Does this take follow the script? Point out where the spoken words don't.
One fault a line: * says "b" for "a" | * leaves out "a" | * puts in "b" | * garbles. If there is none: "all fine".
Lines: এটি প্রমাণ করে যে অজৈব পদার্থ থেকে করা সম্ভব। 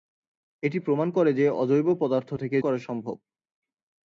all fine